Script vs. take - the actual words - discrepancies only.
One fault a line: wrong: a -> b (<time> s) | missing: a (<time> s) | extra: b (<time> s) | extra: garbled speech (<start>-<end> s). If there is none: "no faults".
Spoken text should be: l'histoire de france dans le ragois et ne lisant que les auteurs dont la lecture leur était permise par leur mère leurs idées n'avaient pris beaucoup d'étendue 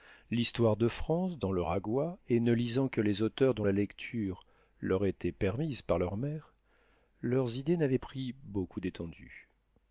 no faults